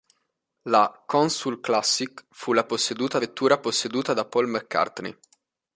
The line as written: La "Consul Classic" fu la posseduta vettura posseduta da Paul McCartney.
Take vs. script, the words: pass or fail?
pass